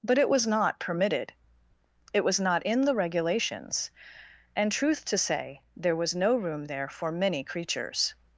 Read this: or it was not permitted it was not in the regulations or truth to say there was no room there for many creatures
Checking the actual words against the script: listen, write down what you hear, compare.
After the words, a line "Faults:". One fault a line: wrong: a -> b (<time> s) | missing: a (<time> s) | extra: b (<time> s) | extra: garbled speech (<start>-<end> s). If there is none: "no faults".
but it was not permitted it was not in the regulations and truth to say there was no room there for many creatures
Faults:
wrong: or -> but (0.0 s)
wrong: or -> and (4.5 s)